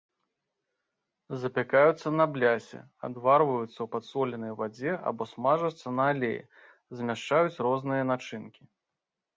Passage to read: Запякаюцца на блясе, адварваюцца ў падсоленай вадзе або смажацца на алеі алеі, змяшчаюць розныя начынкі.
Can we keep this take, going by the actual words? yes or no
no